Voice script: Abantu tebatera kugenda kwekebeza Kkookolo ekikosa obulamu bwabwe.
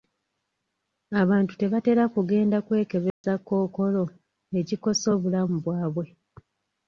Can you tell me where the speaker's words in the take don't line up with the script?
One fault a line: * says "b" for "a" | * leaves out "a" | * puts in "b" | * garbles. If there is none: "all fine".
all fine